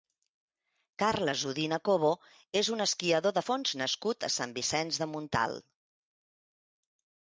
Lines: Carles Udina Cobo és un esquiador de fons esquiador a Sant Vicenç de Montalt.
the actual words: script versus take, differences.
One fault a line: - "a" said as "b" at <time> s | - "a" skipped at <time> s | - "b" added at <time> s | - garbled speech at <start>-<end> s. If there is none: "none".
- "esquiador" said as "nascut" at 3.8 s